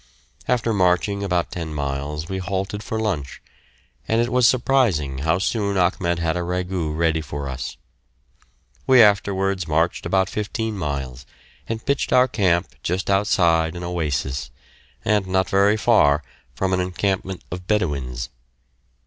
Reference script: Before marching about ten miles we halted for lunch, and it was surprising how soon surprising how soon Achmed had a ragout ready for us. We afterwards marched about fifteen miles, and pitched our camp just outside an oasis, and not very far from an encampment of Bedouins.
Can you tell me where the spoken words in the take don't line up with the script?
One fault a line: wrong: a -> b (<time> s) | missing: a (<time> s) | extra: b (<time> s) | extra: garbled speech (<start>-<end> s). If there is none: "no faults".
wrong: Before -> After (0.5 s)
missing: surprising how soon (5.8 s)